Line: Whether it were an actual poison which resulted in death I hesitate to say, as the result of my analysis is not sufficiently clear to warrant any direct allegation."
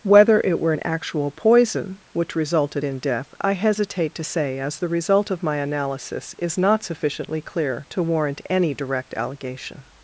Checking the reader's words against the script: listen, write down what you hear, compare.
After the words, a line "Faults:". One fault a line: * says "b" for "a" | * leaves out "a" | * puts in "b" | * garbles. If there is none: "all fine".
Whether it were an actual poison which resulted in death I hesitate to say, as the result of my analysis is not sufficiently clear to warrant any direct allegation."
Faults:
all fine